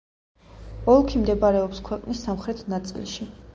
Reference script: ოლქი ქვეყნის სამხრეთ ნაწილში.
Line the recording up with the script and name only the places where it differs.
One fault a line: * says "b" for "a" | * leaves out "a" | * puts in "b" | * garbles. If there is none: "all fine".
* puts in "მდებარეობს"